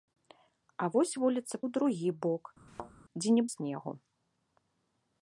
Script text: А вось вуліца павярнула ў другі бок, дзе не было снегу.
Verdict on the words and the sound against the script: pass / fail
fail